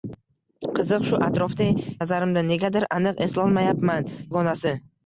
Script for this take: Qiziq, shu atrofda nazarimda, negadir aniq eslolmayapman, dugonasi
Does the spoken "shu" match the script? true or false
true